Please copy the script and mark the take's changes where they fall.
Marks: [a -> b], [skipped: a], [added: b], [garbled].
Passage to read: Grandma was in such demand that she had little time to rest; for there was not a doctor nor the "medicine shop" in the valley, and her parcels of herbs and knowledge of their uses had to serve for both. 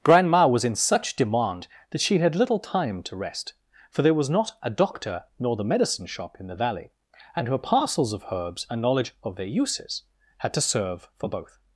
Grandma was in such demand that she had little time to rest; for there was not a doctor nor the "medicine shop" in the valley, and her parcels of herbs and knowledge of their uses had to serve for both.